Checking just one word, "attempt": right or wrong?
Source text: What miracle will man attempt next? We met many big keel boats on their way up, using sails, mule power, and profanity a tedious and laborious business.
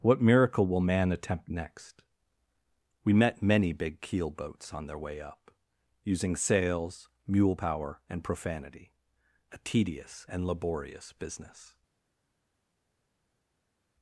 right